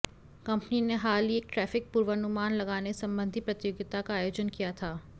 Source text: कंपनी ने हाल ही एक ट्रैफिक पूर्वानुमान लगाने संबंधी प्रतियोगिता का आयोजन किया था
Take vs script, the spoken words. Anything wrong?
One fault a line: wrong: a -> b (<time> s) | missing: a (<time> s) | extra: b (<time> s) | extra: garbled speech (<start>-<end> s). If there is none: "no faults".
no faults